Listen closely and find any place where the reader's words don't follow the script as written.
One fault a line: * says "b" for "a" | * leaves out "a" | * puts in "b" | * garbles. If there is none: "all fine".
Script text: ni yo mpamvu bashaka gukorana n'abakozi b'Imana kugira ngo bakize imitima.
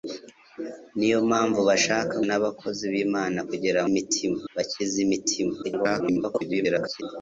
* leaves out "gukorana"
* says "imitima" for "ngo"
* garbles